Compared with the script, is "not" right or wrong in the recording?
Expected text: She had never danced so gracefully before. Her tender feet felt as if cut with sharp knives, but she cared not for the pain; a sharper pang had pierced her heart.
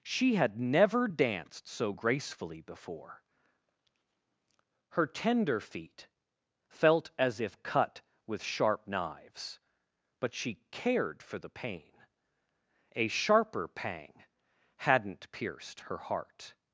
wrong